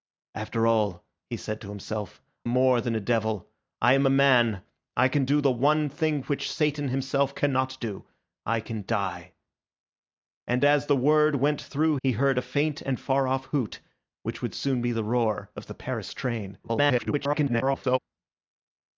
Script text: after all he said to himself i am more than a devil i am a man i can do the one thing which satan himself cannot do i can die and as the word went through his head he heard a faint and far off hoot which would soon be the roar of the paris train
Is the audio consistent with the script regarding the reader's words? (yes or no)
no